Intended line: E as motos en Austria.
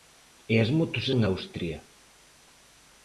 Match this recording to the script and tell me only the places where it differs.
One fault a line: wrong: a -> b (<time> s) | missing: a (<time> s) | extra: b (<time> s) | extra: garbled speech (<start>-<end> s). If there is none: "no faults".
no faults